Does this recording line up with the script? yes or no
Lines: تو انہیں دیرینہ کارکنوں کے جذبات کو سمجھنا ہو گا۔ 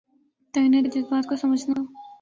no